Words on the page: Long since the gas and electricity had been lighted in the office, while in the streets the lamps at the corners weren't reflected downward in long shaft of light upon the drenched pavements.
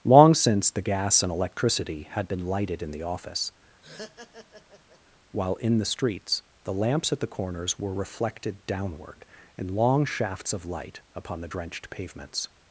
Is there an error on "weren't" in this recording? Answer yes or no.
yes